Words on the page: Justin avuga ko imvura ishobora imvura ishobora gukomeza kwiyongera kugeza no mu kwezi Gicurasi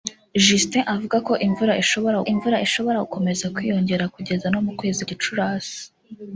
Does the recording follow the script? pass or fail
pass